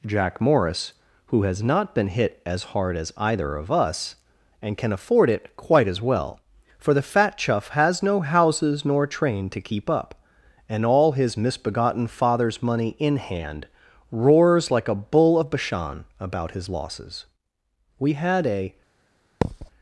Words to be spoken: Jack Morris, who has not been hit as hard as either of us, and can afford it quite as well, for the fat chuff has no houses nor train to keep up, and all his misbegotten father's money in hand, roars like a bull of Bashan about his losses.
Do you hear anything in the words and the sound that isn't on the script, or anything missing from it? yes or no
yes